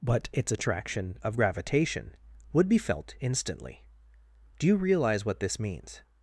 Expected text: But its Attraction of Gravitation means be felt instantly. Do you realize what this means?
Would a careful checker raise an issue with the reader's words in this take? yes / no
yes